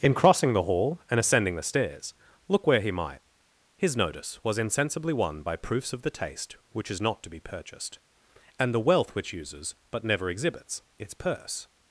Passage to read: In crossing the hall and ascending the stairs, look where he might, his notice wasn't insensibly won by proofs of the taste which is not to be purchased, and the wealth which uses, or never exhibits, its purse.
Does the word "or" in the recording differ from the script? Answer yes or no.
yes